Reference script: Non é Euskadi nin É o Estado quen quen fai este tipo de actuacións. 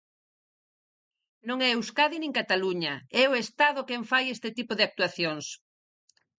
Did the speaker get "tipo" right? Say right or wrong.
right